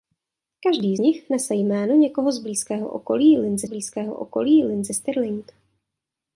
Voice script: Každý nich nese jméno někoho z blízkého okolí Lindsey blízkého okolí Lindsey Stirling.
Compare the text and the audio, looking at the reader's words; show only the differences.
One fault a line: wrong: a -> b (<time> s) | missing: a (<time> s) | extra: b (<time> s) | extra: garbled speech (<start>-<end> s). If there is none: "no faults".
no faults